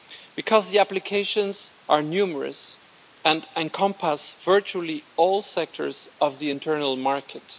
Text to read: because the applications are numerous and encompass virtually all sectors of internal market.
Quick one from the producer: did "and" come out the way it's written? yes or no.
yes